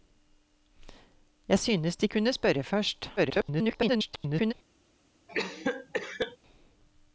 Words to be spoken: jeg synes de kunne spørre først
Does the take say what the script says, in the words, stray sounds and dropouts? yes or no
no